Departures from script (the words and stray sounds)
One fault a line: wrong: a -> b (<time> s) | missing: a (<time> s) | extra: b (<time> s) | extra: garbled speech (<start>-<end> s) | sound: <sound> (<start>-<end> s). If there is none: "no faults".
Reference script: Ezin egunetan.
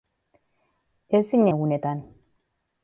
no faults